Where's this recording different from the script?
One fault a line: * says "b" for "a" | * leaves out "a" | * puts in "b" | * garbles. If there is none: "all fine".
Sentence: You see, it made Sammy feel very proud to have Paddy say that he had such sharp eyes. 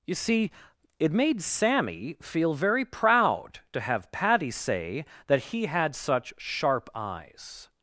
all fine